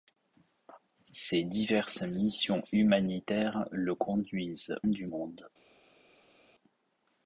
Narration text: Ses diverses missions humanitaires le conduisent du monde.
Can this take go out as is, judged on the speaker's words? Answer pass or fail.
pass